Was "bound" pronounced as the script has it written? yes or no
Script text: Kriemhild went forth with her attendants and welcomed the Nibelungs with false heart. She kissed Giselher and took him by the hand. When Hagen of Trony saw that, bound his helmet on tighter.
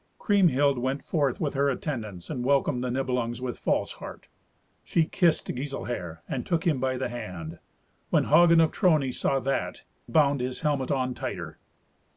yes